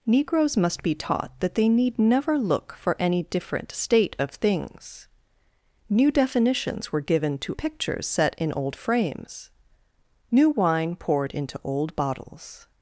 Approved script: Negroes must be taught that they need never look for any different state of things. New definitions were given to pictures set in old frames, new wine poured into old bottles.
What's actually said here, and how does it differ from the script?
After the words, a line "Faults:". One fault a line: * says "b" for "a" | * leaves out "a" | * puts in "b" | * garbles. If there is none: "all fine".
Negroes must be taught that they need never look for any different state of things. New definitions were given to pictures set in old frames, new wine poured into old bottles.
Faults:
all fine